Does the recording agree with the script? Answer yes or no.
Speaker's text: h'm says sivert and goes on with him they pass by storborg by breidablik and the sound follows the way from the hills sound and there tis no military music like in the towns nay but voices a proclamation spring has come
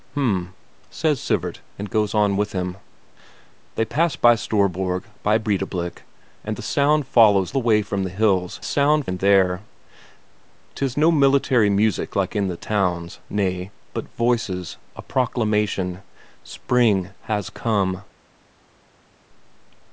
yes